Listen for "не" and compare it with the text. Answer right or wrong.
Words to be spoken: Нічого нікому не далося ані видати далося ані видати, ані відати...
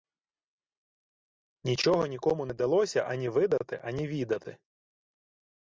right